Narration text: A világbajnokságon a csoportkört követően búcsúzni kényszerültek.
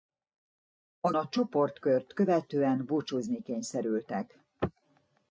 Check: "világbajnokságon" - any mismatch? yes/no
yes